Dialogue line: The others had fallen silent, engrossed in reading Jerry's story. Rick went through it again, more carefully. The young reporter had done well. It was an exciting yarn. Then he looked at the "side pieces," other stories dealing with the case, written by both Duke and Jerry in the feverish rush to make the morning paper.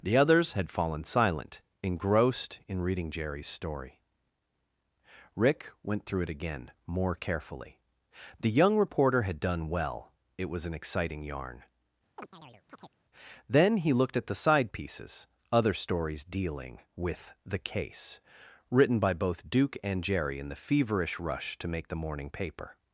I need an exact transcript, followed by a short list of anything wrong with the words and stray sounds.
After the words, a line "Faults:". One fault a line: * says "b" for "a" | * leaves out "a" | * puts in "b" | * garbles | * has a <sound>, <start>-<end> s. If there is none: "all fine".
The others had fallen silent, engrossed in reading Jerry's story. Rick went through it again, more carefully. The young reporter had done well. It was an exciting yarn. Then he looked at the "side pieces," other stories dealing with the case, written by both Duke and Jerry in the feverish rush to make the morning paper.
Faults:
* has a chirp, 12.2-12.9 s